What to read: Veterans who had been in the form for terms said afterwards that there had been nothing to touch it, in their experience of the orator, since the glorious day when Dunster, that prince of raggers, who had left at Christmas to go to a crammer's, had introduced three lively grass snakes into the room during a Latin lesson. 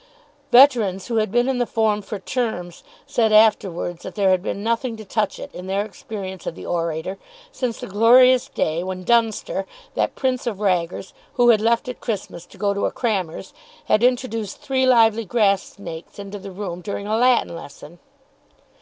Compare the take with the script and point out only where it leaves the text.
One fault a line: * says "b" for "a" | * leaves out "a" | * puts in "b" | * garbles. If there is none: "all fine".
all fine